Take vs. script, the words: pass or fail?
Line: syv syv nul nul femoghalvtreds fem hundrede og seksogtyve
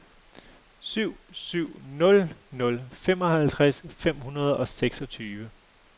pass